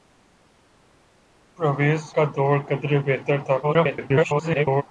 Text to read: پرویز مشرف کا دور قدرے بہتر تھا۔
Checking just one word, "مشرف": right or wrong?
wrong